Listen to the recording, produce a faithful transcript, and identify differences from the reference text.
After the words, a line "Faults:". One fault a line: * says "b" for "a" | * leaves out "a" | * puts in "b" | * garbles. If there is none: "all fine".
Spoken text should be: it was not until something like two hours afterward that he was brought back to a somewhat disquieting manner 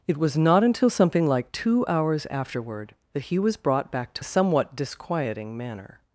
it was not until something like two hours afterward that he was brought back to a somewhat disquieting manner
Faults:
all fine